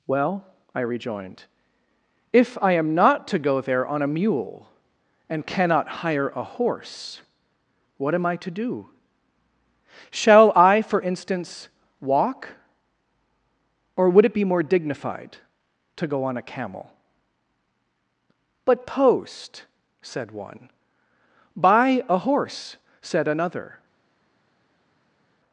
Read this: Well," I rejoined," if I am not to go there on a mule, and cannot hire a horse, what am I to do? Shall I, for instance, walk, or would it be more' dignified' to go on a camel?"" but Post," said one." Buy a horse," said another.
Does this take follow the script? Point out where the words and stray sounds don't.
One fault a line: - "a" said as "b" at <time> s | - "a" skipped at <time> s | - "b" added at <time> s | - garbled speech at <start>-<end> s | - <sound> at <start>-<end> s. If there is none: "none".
none